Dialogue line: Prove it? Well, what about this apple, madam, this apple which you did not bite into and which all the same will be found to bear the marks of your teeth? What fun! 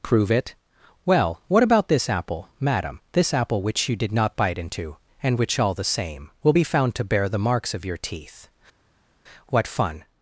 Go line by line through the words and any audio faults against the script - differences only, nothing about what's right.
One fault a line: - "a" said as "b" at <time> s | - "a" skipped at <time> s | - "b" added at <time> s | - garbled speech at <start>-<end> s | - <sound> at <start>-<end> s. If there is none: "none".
none